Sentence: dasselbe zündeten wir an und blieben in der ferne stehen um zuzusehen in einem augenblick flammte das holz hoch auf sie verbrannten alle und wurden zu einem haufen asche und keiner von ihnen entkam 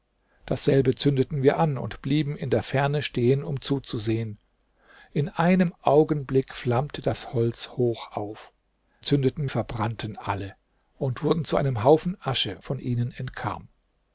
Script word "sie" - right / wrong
wrong